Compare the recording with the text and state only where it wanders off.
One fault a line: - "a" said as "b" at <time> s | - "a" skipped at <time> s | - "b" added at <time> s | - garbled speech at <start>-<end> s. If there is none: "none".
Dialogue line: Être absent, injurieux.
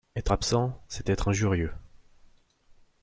- "c'est être" added at 0.9 s